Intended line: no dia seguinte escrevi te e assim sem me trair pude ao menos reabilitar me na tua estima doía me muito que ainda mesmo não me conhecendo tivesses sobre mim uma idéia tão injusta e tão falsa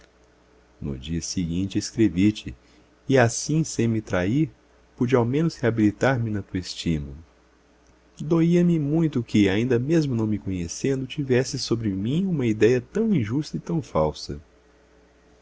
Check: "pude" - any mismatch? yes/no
no